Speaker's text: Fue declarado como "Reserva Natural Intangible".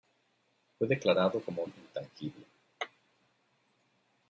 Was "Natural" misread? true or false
true